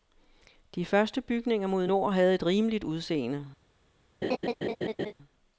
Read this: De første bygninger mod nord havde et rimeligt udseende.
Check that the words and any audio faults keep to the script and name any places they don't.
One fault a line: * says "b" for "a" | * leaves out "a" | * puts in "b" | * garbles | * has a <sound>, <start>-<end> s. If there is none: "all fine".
* has a laugh, 4.2-5.1 s